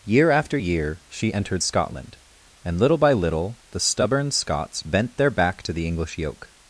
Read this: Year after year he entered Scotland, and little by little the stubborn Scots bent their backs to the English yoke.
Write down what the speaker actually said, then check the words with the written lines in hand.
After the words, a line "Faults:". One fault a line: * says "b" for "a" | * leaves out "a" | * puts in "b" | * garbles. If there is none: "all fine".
Year after year she entered Scotland, and little by little the stubborn Scots bent their back to the English yoke.
Faults:
* says "she" for "he"
* says "back" for "backs"